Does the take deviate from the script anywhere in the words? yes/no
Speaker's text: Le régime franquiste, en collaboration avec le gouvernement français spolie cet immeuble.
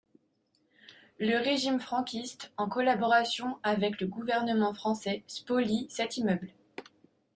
no